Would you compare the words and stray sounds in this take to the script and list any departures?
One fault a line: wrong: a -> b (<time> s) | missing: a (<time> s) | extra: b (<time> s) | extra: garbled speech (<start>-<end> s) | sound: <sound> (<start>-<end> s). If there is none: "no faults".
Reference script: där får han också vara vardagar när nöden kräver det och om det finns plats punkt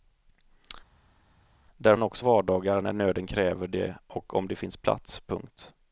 missing: får (2.0 s)
missing: vara (2.2 s)